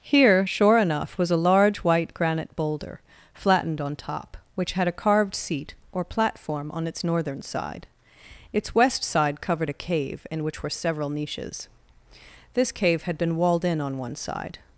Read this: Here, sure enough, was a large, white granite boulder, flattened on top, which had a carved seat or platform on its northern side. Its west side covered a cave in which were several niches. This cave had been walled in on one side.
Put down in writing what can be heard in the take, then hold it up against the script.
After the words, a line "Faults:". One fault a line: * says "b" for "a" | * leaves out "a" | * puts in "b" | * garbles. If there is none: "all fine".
Here, sure enough, was a large, white granite boulder, flattened on top, which had a carved seat or platform on its northern side. Its west side covered a cave in which were several niches. This cave had been walled in on one side.
Faults:
all fine